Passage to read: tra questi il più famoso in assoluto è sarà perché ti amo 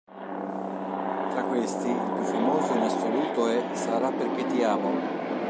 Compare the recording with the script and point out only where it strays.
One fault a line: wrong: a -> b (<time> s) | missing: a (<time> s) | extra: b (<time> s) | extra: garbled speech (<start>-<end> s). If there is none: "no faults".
no faults